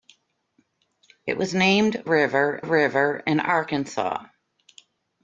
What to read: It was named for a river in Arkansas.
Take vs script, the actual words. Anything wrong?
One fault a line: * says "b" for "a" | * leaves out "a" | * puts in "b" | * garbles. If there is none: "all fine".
* says "river" for "for"